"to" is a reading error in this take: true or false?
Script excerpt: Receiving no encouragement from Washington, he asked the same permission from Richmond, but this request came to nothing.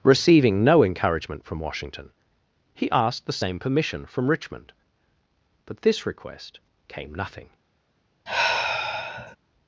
true